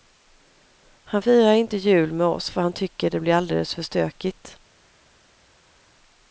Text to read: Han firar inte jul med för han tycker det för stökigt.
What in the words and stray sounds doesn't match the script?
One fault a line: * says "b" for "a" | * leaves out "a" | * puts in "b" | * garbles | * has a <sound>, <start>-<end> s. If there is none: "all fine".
* puts in "oss"
* puts in "blir alldeles"